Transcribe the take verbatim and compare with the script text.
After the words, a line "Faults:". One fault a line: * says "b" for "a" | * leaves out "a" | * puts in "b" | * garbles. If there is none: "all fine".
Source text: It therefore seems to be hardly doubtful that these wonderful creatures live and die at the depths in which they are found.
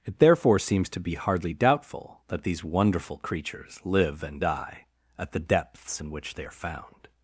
It therefore seems to be hardly doubtful that these wonderful creatures live and die at the depths in which they are found.
Faults:
all fine